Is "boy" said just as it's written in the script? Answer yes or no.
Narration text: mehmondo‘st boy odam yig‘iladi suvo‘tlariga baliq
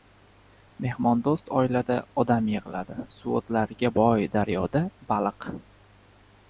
no